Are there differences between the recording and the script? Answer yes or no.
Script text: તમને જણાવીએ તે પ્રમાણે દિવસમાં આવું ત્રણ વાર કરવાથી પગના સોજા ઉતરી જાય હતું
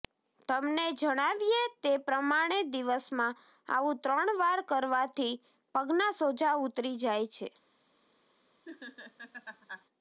yes